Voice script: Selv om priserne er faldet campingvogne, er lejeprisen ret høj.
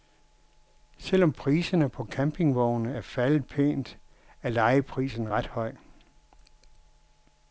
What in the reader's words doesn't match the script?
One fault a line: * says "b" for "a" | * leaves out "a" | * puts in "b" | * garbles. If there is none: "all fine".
* puts in "på campingvogne"
* says "pænt" for "campingvogne"